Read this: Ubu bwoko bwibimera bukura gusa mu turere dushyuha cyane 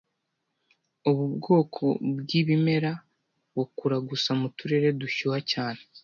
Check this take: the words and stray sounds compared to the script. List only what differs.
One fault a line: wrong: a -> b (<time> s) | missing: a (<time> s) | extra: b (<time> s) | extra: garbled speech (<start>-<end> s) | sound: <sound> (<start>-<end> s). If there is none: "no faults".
no faults